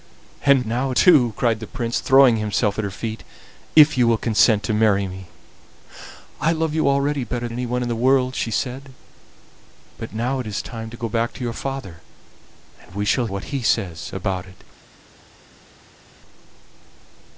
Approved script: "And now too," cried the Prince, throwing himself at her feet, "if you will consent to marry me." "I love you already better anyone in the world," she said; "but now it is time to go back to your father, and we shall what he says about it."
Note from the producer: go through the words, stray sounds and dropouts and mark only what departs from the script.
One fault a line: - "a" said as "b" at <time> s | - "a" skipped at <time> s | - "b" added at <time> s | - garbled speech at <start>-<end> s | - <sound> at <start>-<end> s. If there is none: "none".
none